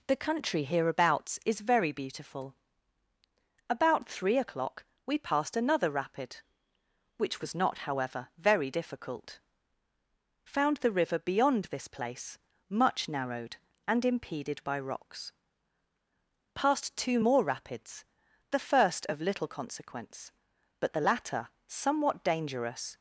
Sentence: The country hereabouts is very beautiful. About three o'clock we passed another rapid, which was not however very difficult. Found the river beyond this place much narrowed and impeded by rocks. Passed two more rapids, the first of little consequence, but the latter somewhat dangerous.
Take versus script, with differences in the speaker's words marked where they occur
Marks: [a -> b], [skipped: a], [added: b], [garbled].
The country hereabouts is very beautiful. About three o'clock we passed another rapid, which was not however very difficult. Found the river beyond this place much narrowed and impeded by rocks. Passed two more rapids, the first of little consequence, but the latter somewhat dangerous.